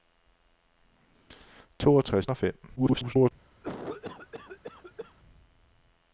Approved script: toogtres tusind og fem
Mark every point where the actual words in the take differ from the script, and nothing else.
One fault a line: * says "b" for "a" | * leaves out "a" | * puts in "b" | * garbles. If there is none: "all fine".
* leaves out "tusind"
* garbles